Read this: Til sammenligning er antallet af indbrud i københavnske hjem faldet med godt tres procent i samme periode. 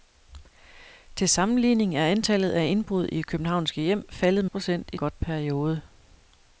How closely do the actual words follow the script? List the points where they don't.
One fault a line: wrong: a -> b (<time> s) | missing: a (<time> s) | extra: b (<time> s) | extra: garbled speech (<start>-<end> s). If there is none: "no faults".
missing: med godt tres (4.4 s)
wrong: samme -> godt (4.9 s)